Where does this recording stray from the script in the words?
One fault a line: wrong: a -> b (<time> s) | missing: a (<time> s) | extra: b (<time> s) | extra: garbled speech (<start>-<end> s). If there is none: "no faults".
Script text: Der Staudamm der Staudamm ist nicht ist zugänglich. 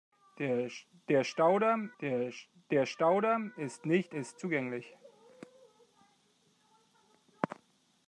no faults